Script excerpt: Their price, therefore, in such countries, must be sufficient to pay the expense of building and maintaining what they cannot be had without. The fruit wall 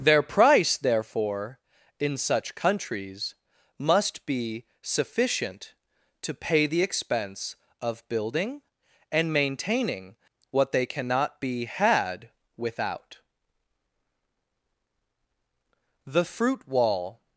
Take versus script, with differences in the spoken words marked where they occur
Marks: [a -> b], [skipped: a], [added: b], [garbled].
Their price, therefore, in such countries, must be sufficient to pay the expense of building and maintaining what they cannot be had without. The fruit wall